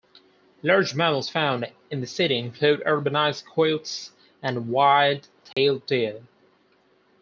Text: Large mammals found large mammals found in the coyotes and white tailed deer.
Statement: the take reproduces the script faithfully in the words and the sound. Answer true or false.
false